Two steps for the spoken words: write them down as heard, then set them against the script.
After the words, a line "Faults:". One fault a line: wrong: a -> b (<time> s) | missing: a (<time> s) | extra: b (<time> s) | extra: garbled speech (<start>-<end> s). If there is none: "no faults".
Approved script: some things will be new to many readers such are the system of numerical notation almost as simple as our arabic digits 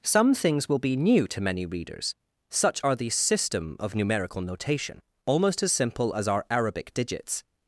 some things will be new to many readers such are the system of numerical notation almost as simple as our arabic digits
Faults:
no faults